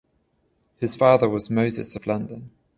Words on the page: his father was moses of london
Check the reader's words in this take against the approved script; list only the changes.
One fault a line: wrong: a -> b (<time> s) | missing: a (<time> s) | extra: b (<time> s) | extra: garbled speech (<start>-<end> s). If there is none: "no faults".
no faults